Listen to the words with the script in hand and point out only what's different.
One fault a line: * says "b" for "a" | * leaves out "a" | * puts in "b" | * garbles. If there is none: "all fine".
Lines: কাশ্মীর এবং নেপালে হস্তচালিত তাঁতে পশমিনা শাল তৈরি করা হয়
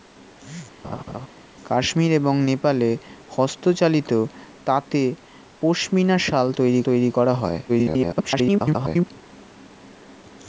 * puts in "তৈরি"
* garbles